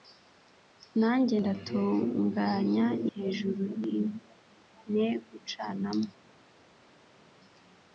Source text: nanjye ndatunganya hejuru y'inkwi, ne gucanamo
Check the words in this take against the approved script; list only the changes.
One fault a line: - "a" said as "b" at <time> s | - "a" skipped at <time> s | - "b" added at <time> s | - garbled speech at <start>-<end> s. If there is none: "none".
none